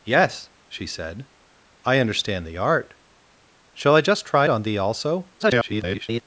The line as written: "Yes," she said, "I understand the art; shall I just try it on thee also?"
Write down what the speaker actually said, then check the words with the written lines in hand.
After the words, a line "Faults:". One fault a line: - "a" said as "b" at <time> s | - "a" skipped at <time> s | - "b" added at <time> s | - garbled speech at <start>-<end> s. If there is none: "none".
"Yes," she said, "I understand the art; shall I just try on thee also?" [garbled]
Faults:
- "it" skipped at 4.5 s
- garbled speech at 5.4-6.2 s